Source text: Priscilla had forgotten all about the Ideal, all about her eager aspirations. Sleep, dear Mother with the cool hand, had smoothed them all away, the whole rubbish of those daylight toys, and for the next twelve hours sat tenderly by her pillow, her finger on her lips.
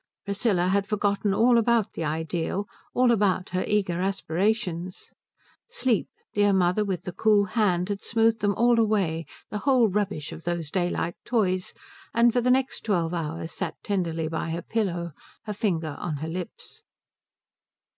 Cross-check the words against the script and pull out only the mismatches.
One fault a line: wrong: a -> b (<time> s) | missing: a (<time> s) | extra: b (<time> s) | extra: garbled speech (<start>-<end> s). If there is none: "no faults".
no faults